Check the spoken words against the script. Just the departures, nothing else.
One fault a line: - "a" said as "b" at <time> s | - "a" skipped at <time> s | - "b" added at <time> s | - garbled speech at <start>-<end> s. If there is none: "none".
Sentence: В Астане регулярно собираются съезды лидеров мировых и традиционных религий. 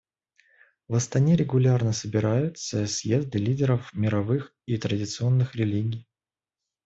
none